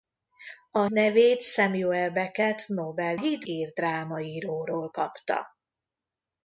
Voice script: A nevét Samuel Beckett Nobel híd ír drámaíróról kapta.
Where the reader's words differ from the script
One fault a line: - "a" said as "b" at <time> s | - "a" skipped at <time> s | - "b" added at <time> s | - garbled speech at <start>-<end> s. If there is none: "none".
none